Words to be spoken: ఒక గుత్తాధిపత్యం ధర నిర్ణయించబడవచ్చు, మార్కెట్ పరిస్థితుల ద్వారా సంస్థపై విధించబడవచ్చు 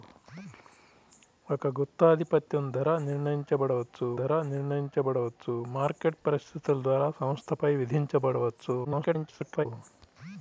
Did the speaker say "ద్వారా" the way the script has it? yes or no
yes